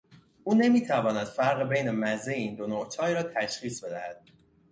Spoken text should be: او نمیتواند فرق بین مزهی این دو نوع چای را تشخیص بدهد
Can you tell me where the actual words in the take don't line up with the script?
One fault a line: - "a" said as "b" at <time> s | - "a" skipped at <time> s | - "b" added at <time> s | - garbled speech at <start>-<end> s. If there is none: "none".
none